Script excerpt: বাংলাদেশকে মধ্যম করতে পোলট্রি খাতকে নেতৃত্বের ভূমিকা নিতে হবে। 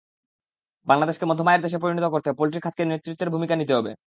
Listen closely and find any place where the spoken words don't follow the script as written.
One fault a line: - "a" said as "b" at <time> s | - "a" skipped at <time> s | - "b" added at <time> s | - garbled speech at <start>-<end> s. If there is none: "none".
- "আয়ের দেশে পরিণত" added at 1.5 s